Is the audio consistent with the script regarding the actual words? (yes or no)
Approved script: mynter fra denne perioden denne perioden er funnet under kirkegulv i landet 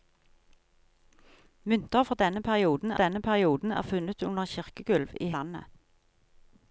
yes